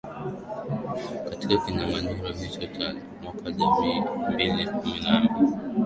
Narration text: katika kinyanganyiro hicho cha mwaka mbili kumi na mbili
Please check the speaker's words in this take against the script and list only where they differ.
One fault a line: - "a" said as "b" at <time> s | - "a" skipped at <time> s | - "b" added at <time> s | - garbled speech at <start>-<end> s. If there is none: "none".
- "elfu" added at 3.5 s